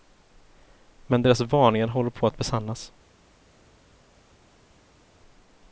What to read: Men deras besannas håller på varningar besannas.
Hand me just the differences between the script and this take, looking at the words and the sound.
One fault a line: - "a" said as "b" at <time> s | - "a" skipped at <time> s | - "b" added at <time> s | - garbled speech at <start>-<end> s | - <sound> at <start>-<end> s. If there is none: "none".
- "besannas" said as "varningar" at 1.4 s
- "varningar" said as "att" at 2.3 s